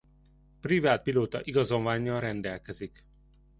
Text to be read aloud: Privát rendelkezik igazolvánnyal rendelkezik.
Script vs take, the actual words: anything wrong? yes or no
yes